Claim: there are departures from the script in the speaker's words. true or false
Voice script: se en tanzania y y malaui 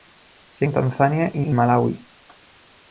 false